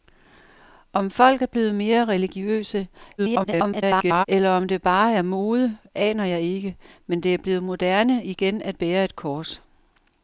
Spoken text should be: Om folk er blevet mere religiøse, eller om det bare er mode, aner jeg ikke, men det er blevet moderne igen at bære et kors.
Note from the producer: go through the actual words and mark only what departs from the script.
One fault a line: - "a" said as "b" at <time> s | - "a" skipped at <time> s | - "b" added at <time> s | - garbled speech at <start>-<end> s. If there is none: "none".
- garbled speech at 3.2-4.2 s